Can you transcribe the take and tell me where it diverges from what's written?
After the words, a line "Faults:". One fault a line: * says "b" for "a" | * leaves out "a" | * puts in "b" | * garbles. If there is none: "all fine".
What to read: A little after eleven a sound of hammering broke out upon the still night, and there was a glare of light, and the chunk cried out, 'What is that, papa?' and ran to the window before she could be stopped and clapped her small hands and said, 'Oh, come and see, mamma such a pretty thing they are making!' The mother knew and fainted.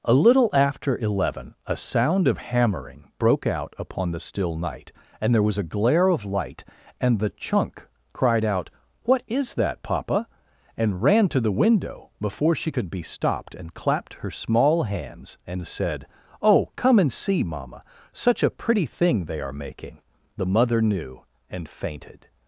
A little after eleven a sound of hammering broke out upon the still night, and there was a glare of light, and the chunk cried out, 'What is that, papa?' and ran to the window before she could be stopped and clapped her small hands and said, 'Oh, come and see, mamma such a pretty thing they are making!' The mother knew and fainted.
Faults:
all fine